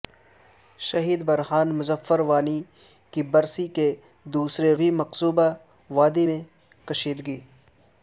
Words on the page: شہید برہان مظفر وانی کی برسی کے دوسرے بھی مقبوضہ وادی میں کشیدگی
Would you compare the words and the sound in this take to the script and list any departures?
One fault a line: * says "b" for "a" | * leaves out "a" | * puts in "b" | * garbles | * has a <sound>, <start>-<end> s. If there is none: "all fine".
all fine